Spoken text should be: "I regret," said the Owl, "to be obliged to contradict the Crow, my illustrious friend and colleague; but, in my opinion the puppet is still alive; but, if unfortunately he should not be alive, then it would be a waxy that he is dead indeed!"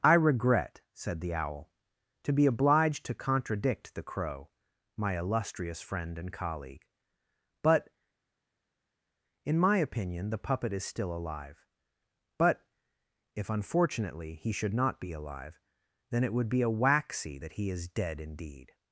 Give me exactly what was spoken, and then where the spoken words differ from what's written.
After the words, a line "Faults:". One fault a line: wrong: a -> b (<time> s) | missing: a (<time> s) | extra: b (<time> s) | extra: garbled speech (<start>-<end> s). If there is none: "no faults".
"I regret," said the Owl, "to be obliged to contradict the Crow, my illustrious friend and colleague; but, in my opinion the puppet is still alive; but, if unfortunately he should not be alive, then it would be a waxy that he is dead indeed!"
Faults:
no faults